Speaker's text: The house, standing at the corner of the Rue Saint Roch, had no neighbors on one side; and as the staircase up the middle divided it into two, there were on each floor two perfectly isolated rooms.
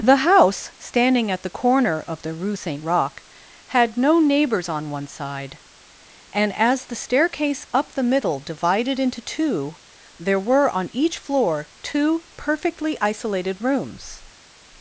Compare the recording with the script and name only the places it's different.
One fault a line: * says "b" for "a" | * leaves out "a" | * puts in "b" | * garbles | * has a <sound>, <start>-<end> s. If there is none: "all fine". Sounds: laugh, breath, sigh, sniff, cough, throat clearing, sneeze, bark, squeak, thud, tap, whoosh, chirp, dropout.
* leaves out "it"